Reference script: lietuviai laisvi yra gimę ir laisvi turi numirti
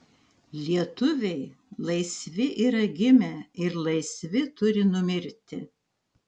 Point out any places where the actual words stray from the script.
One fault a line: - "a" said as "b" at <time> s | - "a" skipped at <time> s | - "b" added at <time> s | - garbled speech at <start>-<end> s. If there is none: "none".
none